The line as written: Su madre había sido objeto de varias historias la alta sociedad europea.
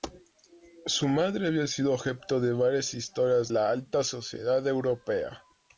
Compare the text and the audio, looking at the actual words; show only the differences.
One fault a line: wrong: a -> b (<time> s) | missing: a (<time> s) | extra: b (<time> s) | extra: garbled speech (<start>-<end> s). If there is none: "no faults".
no faults